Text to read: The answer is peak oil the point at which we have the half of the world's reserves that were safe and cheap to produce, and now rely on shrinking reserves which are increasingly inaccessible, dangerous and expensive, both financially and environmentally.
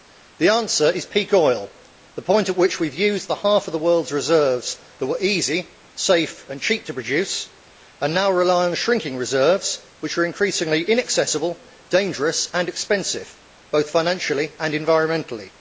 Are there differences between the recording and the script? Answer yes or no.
yes